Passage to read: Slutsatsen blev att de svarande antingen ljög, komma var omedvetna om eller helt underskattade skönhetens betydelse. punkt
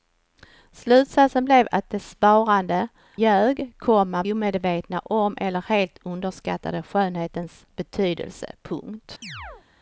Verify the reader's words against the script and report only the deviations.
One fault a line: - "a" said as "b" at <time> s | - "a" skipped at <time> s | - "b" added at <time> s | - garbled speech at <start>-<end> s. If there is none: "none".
- "antingen" skipped at 2.9 s
- "var" skipped at 4.2 s